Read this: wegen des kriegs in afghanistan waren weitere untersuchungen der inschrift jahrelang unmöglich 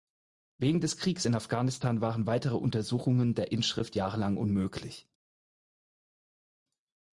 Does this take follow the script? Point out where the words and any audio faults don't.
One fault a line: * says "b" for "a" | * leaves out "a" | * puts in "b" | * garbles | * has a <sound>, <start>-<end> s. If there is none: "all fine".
all fine